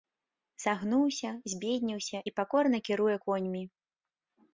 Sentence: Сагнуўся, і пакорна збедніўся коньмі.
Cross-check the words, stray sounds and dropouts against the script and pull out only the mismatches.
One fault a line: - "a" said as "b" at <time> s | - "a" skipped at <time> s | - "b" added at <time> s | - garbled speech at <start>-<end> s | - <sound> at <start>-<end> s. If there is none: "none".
- "збедніўся" added at 1.5 s
- "збедніўся" said as "кіруе" at 2.9 s